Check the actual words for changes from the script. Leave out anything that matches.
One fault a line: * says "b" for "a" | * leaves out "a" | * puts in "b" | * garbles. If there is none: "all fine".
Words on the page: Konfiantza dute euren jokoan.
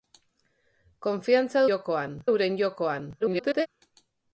* says "jokoan" for "dute"
* garbles